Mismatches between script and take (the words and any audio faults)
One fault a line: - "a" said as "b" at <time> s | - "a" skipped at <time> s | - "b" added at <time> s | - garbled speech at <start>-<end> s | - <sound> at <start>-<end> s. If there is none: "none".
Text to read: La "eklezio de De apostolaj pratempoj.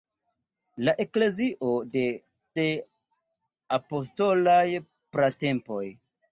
none